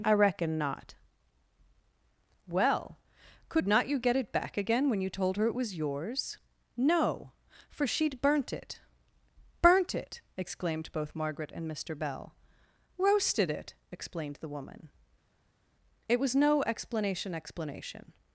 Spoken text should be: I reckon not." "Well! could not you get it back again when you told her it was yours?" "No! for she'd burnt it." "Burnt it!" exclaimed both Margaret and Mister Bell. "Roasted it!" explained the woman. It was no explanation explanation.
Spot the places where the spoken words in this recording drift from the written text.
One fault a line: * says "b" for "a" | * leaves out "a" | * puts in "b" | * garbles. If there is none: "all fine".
all fine